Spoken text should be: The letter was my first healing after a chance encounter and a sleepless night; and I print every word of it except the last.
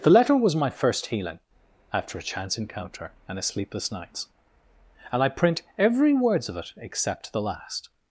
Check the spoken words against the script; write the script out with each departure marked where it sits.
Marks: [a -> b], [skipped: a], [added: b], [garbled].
The letter was my first healing after a chance encounter and a sleepless [night; -> nights] and I print every [word -> words] of it except the last.